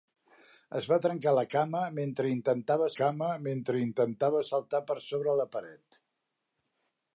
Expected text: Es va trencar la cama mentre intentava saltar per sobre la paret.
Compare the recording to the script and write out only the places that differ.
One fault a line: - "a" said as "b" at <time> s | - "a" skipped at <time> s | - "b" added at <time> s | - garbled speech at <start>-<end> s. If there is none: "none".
- "cama mentre intentava" added at 3.0 s